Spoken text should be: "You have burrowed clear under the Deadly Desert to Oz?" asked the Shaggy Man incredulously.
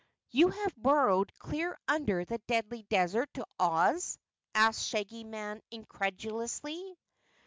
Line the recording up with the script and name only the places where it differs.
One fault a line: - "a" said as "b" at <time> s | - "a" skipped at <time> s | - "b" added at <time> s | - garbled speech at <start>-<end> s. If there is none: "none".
none